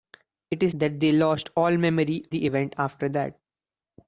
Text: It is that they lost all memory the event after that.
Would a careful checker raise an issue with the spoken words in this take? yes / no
no